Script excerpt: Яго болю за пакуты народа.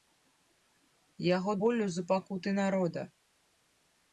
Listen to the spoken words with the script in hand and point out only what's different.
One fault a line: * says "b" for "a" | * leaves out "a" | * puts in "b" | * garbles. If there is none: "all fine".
all fine